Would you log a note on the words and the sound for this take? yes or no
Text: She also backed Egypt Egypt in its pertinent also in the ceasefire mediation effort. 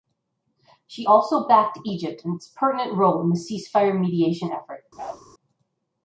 yes